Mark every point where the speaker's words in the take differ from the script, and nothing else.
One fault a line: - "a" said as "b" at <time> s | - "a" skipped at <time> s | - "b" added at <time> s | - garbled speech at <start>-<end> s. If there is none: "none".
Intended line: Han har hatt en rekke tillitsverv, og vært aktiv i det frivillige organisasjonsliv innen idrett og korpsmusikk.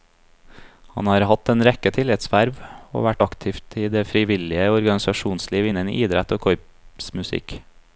none